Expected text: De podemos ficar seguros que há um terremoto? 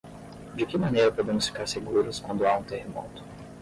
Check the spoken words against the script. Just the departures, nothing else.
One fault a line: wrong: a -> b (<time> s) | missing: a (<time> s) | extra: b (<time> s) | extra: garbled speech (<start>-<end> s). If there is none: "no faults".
extra: que maneira (0.7 s)
wrong: que -> quando (2.2 s)